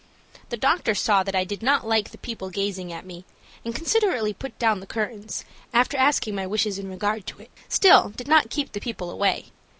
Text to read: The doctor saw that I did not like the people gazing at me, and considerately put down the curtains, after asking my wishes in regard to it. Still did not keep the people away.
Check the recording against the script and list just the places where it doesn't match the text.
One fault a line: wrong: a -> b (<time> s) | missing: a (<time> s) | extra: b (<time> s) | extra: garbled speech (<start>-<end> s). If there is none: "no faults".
no faults